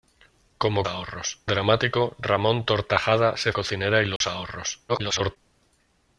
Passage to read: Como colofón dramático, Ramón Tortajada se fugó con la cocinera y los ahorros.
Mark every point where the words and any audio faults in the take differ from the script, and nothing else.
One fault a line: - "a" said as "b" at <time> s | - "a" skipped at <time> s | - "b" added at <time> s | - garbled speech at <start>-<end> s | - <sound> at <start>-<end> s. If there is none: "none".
- "colofón" said as "ahorros" at 0.9 s
- "fugó con la" skipped at 3.5 s
- dropout at 4.2-4.2 s
- garbled speech at 4.9-5.4 s